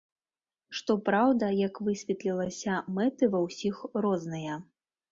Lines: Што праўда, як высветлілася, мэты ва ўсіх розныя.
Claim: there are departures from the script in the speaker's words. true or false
false